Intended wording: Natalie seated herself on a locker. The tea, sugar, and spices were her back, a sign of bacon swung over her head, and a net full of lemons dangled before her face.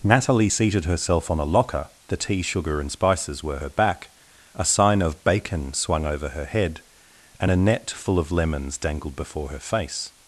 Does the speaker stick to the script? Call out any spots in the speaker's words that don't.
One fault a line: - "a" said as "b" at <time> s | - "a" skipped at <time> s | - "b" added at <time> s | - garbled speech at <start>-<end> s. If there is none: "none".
none